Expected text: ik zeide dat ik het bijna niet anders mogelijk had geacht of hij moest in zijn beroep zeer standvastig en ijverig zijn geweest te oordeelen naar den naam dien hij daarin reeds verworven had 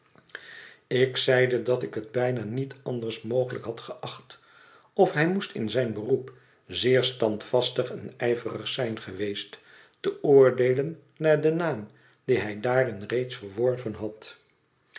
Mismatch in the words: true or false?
false